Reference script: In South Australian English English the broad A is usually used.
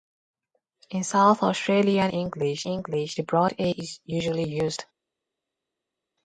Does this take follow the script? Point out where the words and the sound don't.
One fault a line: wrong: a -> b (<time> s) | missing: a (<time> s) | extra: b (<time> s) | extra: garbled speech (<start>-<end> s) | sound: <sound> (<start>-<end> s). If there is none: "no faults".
no faults